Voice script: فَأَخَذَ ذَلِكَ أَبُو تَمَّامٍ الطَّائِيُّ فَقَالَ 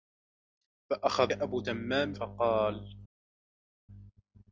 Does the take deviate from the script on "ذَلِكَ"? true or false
true